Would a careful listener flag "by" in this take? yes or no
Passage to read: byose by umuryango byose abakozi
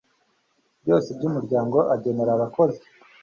no